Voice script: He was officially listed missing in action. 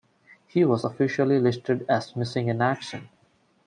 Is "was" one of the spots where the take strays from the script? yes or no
no